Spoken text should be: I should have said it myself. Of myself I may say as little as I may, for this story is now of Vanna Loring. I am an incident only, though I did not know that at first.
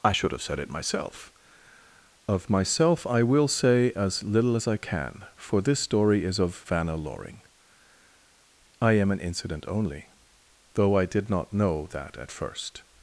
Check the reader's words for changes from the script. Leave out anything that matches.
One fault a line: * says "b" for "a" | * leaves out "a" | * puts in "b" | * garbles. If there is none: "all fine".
* says "will" for "may"
* says "can" for "may"
* leaves out "now"